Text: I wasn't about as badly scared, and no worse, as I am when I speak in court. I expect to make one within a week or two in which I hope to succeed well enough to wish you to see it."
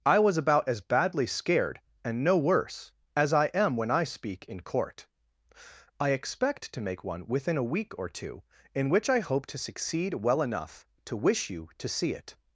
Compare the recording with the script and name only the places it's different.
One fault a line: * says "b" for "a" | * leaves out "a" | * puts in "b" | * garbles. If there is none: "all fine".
* says "was" for "wasn't"